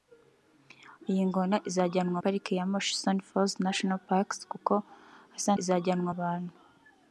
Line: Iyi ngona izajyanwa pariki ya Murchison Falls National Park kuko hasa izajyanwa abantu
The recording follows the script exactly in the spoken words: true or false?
true